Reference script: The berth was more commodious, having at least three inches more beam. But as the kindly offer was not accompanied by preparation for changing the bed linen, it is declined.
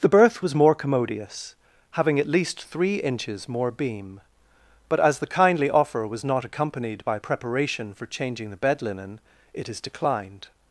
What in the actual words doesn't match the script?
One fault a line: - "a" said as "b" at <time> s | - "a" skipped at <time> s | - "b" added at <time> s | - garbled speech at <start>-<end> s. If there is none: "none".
none